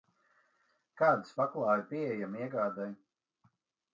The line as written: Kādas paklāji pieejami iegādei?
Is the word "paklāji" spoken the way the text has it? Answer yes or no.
yes